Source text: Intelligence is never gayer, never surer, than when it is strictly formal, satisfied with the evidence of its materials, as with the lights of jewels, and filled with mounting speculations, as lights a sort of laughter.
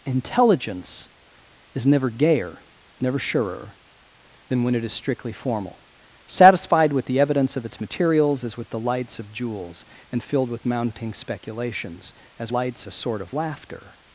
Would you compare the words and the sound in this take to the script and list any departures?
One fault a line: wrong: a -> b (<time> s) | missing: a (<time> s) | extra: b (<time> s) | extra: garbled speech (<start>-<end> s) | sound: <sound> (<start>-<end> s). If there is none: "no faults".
no faults